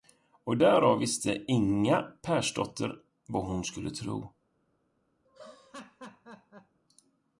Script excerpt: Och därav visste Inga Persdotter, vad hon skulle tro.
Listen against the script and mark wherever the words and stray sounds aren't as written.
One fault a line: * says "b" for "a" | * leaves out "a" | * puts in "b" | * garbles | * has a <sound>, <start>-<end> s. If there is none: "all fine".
* has a laugh, 5.3-6.8 s